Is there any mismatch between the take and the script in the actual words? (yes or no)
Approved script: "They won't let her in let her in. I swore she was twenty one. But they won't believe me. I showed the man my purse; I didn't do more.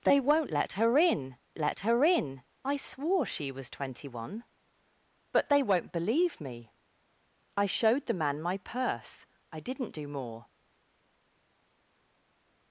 no